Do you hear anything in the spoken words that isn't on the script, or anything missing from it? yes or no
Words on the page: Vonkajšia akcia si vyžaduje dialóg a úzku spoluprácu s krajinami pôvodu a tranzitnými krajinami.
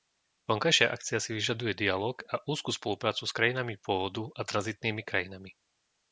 no